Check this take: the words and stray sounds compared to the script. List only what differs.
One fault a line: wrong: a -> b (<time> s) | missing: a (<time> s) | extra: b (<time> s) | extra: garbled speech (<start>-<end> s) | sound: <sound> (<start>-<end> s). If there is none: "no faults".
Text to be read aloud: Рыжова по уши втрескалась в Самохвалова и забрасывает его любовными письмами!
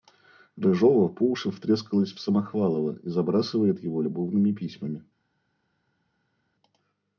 no faults